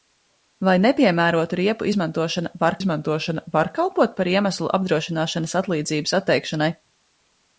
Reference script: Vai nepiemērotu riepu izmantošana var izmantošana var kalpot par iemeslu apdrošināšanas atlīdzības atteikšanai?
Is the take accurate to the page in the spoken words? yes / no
yes